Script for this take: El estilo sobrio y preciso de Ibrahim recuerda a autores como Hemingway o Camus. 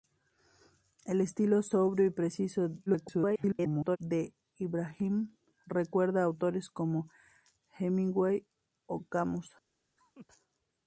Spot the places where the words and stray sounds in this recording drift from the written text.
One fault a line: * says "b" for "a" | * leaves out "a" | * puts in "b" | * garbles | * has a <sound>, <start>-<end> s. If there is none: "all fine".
* garbles
* has a laugh, 10.0-10.3 s